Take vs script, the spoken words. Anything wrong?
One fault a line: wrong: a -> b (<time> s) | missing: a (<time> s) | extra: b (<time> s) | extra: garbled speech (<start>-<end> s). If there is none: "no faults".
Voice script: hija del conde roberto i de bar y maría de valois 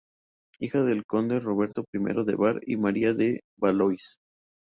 no faults